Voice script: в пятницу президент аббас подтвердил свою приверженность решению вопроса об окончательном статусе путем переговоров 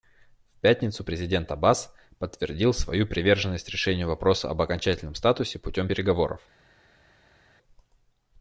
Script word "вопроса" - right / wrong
right